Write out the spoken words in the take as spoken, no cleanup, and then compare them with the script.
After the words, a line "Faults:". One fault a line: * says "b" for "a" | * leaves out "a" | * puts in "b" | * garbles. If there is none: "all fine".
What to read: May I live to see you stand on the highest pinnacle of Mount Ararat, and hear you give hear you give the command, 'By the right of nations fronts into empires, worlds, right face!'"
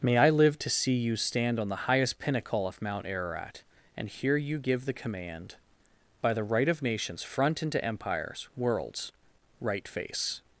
May I live to see you stand on the highest pinnacle of Mount Ararat, and hear you give the command, 'By the right of nations front into empires, worlds, right face!'"
Faults:
* leaves out "hear you give"
* says "front" for "fronts"